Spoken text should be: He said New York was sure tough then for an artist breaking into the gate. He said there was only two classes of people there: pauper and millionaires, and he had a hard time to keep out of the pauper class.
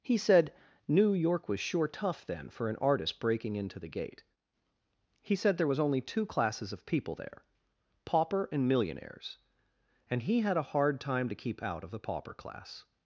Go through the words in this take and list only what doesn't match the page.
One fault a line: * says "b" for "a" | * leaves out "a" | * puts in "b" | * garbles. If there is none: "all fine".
all fine